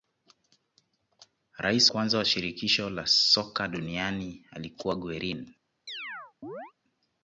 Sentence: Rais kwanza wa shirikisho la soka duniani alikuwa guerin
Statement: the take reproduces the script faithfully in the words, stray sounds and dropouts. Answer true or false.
false